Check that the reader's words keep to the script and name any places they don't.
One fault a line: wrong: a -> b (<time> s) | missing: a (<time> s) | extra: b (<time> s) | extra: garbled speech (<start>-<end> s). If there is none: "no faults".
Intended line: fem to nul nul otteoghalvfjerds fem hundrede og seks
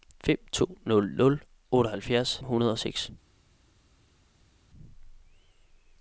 missing: fem (2.4 s)